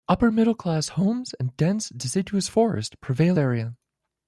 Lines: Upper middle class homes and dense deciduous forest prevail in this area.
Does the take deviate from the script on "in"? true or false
true